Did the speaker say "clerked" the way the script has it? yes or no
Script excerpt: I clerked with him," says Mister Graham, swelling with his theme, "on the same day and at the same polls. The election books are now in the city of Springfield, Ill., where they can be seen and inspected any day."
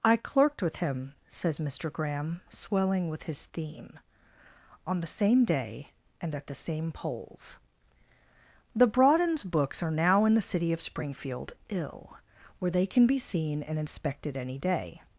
yes